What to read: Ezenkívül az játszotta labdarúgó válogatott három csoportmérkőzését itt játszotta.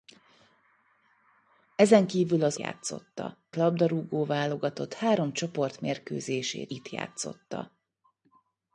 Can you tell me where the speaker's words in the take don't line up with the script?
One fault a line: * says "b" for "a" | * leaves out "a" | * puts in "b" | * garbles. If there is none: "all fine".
all fine